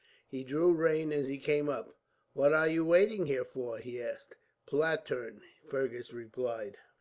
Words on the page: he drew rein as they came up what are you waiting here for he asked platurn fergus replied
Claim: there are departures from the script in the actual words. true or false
true